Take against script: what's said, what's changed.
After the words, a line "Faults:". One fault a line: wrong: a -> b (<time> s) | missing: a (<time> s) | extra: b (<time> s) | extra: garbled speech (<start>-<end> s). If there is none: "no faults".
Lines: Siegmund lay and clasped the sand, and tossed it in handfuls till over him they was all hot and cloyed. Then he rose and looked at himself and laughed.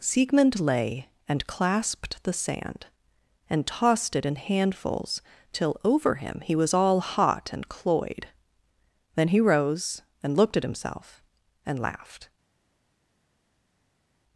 Siegmund lay and clasped the sand, and tossed it in handfuls till over him he was all hot and cloyed. Then he rose and looked at himself and laughed.
Faults:
wrong: they -> he (6.4 s)